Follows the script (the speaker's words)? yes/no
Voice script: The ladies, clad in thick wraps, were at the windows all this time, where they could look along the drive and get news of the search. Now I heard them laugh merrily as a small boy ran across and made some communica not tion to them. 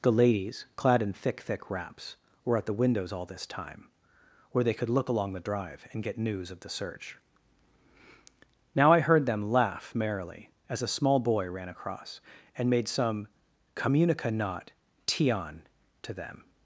no